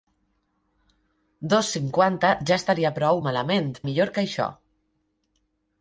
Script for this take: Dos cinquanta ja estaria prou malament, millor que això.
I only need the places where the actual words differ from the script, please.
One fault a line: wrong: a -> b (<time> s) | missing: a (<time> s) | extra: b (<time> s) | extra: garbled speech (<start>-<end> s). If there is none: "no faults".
no faults